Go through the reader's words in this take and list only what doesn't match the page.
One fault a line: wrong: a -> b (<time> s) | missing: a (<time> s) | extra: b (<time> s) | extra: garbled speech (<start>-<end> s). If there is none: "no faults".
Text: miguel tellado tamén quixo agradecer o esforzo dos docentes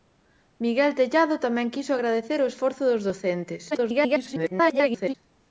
extra: garbled speech (3.7-5.2 s)